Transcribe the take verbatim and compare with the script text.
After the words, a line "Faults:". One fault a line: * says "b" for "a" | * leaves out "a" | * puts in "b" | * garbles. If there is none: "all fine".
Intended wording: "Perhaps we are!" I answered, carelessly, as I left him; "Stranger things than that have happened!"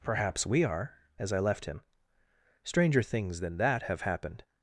"Perhaps we are!" as I left him; "Stranger things than that have happened!"
Faults:
* leaves out "I answered carelessly"